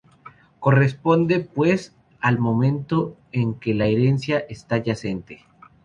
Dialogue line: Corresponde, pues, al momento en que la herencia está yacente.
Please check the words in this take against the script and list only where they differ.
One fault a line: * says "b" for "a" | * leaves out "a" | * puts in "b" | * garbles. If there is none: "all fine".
all fine